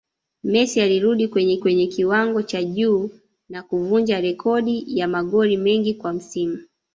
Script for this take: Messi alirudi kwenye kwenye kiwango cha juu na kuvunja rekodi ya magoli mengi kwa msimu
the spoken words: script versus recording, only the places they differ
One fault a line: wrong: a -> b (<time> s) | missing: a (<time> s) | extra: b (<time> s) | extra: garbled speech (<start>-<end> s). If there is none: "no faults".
no faults